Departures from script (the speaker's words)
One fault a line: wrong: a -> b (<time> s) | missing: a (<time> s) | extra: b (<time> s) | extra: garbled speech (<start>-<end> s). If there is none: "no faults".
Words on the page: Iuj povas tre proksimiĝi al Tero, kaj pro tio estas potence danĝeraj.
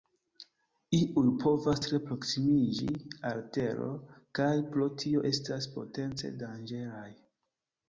no faults